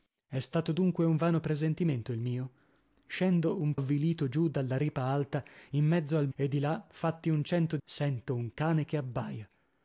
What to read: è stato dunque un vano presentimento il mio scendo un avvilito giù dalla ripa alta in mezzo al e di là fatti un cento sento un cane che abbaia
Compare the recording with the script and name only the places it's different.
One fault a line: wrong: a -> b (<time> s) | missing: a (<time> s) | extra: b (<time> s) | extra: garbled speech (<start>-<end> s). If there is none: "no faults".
no faults